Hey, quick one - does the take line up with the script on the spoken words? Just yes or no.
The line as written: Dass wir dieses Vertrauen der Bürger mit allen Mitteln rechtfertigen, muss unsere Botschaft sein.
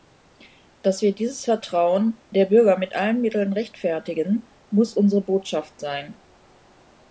yes